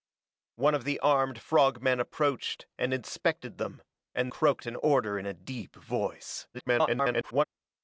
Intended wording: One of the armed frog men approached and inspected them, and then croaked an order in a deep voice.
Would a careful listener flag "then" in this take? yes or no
yes